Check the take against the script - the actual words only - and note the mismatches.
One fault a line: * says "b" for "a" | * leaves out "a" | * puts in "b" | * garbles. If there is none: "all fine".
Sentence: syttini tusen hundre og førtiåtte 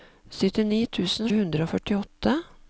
all fine